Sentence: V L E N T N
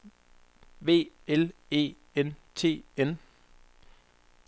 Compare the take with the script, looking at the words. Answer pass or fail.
pass